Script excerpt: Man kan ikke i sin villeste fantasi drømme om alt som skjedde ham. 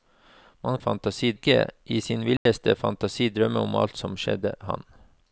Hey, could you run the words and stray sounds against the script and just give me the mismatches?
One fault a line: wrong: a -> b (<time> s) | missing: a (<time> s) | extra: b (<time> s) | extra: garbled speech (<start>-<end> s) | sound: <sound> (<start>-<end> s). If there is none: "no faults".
wrong: kan -> fantasi (0.8 s)
sound: dropout (2.4-2.5 s)